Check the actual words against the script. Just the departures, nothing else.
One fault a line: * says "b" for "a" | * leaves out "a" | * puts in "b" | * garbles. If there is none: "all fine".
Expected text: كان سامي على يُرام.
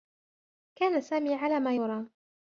* puts in "ما"